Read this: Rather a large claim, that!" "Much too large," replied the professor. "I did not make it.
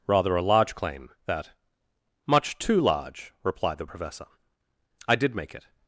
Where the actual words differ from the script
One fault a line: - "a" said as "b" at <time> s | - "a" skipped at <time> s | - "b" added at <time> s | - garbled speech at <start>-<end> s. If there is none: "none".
- "not" skipped at 5.3 s